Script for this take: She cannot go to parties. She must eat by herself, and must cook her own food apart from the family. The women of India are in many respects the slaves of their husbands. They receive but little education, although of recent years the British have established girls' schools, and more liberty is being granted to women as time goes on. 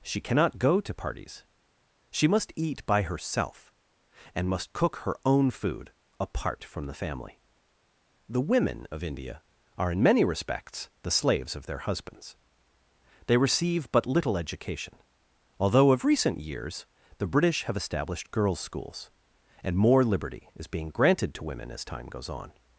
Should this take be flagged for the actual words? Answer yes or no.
no